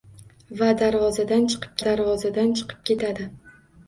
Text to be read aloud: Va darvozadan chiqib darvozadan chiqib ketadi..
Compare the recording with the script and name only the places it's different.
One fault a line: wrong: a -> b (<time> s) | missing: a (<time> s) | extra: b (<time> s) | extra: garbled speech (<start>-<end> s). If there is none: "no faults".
no faults